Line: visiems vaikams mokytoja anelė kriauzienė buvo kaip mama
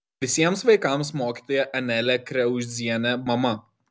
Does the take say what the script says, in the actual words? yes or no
no